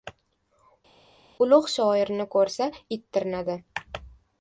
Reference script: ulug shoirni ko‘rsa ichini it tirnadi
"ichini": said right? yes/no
no